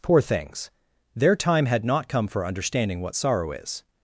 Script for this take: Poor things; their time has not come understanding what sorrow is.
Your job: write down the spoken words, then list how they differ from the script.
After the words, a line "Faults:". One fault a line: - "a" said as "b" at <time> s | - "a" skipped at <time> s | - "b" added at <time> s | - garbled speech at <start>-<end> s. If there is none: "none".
Poor things; their time had not come for understanding what sorrow is.
Faults:
- "has" said as "had" at 1.7 s
- "for" added at 2.3 s